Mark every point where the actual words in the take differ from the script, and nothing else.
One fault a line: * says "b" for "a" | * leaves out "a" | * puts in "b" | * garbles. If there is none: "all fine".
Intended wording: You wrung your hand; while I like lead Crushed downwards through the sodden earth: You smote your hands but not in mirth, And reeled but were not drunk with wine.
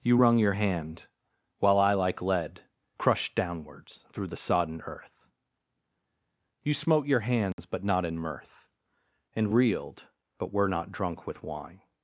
all fine